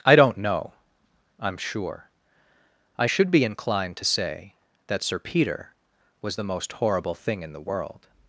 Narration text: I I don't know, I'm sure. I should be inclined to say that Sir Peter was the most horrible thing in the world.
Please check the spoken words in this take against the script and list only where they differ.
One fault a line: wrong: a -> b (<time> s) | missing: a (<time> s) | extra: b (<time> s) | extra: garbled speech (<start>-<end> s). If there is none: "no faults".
missing: I (0.1 s)